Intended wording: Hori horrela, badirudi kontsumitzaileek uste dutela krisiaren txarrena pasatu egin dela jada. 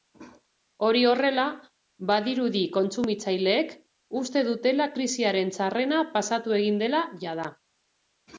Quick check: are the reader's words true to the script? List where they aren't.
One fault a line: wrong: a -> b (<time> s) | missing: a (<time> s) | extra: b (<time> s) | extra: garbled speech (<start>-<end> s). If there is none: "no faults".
no faults